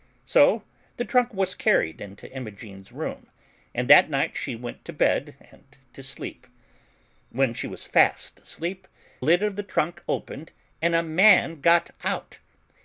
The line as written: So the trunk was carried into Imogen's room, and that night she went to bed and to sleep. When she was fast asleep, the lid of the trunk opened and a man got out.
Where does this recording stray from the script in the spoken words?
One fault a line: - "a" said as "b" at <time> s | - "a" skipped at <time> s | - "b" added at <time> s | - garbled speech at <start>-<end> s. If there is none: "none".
- "the" skipped at 8.9 s